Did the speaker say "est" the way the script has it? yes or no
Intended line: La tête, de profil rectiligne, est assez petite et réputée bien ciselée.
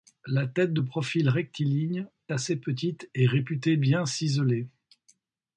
no